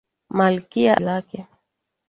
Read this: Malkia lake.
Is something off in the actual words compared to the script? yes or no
no